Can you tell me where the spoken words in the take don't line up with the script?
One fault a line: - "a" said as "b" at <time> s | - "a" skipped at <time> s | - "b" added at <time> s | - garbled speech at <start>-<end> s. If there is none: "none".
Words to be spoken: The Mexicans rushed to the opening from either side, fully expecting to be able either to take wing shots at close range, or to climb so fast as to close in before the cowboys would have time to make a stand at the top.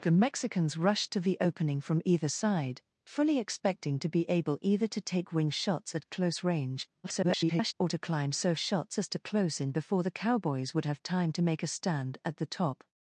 - garbled speech at 7.0-7.7 s
- "fast" said as "shots" at 8.6 s